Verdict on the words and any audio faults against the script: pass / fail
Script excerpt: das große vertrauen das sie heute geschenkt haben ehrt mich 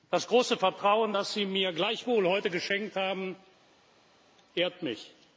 fail